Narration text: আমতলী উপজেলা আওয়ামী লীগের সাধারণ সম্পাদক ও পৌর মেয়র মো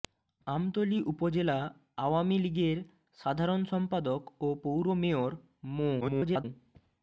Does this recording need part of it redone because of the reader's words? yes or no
yes